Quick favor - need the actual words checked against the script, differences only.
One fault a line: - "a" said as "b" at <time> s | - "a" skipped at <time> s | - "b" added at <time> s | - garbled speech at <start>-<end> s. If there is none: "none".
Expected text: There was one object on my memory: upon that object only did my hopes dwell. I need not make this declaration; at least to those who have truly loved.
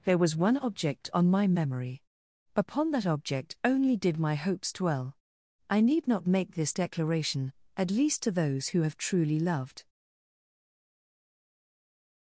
none